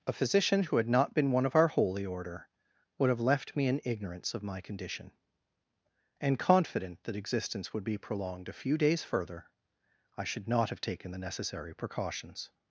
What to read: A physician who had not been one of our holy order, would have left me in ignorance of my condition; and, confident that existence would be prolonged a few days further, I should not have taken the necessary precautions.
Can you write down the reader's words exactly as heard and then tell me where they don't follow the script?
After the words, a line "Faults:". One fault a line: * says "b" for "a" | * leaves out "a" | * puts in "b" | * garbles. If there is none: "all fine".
A physician who had not been one of our holy order, would have left me in ignorance of my condition; and, confident that existence would be prolonged a few days further, I should not have taken the necessary precautions.
Faults:
all fine